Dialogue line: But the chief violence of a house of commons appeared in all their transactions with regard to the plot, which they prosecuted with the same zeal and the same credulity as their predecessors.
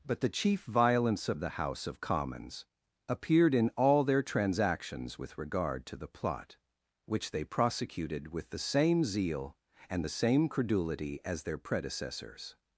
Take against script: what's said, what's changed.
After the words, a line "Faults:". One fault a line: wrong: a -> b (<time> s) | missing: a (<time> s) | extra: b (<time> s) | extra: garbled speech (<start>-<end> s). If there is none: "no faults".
But the chief violence of the house of commons appeared in all their transactions with regard to the plot, which they prosecuted with the same zeal and the same credulity as their predecessors.
Faults:
wrong: a -> the (1.4 s)